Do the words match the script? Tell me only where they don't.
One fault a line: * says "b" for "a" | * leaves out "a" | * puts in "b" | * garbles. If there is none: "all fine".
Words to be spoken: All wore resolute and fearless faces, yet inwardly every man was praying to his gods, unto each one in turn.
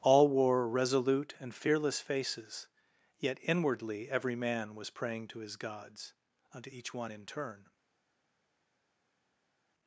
all fine